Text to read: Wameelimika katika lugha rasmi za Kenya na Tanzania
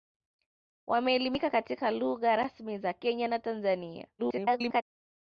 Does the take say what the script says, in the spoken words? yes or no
no